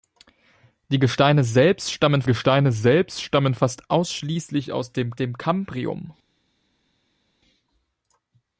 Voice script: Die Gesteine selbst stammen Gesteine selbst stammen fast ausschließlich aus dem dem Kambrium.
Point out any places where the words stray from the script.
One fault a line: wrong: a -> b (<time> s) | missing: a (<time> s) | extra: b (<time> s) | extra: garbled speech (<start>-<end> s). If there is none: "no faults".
no faults